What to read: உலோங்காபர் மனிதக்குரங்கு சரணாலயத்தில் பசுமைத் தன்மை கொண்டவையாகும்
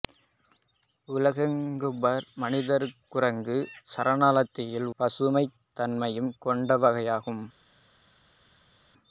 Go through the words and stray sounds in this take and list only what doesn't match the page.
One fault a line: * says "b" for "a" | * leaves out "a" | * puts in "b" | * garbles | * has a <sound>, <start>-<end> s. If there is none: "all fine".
all fine